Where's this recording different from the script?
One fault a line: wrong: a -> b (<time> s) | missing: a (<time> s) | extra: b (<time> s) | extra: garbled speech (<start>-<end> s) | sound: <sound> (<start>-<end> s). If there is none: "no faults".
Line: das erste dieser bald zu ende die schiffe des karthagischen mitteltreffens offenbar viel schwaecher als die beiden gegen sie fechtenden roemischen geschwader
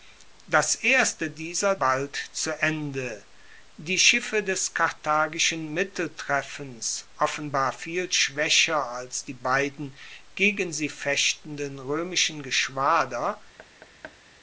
sound: thud (13.6-14.2 s)